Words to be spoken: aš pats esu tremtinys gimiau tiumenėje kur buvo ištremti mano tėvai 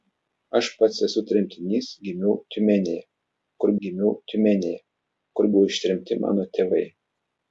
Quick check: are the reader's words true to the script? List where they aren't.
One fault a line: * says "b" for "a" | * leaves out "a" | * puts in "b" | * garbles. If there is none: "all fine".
* puts in "gimiau tiumenėje kur"